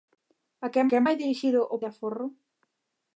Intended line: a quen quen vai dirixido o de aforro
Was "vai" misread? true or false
false